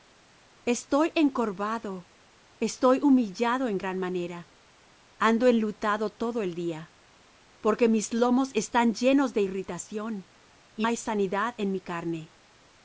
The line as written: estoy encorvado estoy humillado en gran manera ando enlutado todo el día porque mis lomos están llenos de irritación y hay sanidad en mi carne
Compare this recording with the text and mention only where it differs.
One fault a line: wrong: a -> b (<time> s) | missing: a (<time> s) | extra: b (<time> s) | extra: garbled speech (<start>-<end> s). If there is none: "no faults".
no faults